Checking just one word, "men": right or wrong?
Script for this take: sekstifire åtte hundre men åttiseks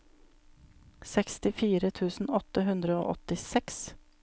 wrong